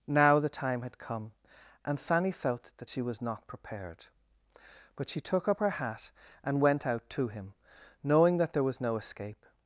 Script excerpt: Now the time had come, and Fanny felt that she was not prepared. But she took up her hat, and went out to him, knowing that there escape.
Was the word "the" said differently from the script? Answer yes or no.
no